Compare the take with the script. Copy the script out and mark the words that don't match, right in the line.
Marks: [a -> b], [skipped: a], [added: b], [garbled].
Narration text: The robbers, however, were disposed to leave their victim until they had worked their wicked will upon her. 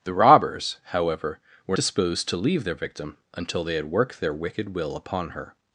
The robbers, however, were disposed to leave their victim until they had worked their wicked will upon her.